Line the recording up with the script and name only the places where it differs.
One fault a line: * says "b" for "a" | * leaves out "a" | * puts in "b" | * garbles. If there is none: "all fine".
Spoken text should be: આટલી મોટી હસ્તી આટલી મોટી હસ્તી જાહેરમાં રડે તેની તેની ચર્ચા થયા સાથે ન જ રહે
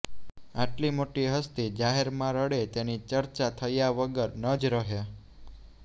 * leaves out "આટલી મોટી હસ્તી"
* leaves out "તેની"
* says "વગર" for "સાથે"